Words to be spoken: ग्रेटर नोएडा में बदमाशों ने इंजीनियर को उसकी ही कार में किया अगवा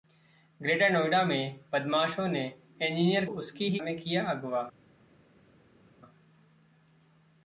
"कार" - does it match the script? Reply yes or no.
no